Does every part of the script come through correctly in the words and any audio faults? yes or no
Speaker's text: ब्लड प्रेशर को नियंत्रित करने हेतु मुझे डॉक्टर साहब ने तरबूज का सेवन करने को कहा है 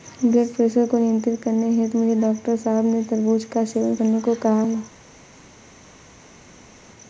yes